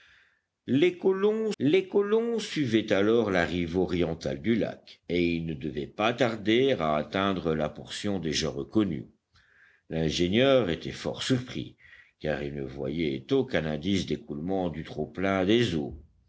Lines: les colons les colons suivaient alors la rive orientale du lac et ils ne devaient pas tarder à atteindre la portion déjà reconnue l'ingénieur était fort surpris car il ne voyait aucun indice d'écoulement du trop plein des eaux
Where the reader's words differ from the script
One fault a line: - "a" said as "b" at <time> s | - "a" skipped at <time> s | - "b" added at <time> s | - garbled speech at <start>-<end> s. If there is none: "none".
none